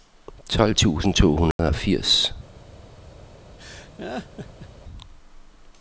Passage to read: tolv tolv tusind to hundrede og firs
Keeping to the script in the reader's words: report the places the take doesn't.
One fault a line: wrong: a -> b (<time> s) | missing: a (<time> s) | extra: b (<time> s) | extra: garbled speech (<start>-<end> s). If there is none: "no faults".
missing: tolv (0.8 s)